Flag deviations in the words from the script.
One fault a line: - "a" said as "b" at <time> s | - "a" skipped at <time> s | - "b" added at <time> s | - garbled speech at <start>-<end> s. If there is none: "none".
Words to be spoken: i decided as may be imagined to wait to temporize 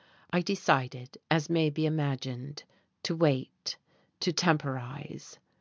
none